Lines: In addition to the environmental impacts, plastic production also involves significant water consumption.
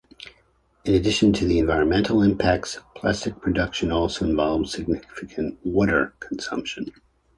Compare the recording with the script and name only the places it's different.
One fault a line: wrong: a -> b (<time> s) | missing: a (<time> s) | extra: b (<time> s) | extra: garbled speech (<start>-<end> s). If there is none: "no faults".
no faults